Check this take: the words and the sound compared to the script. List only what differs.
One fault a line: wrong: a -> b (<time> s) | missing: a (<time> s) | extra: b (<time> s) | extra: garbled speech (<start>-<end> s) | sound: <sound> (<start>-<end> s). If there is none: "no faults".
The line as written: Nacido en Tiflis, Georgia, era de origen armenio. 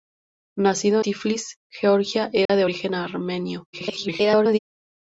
missing: en (1.0 s)
sound: dropout (2.5-2.5 s)
extra: garbled speech (3.7-4.6 s)